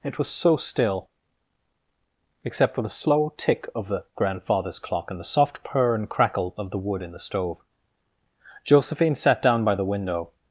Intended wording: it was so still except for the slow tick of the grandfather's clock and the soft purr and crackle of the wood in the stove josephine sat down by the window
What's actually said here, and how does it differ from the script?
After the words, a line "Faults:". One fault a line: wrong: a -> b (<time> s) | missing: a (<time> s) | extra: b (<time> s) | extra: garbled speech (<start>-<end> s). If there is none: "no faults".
it was so still except for the slow tick of the grandfather's clock and the soft purr and crackle of the wood in the stove josephine sat down by the window
Faults:
no faults